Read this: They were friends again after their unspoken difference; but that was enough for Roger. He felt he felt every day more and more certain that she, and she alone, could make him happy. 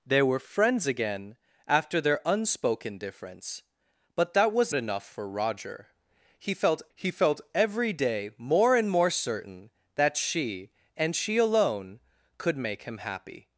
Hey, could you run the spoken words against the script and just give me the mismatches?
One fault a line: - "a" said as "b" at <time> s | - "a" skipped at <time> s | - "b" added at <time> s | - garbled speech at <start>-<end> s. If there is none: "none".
none